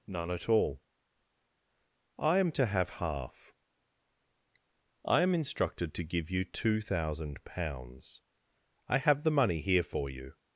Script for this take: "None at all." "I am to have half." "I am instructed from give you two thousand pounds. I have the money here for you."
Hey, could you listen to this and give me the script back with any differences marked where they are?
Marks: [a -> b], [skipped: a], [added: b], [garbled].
"None at all." "I am to have half." "I am instructed [from -> to] give you two thousand pounds. I have the money here for you."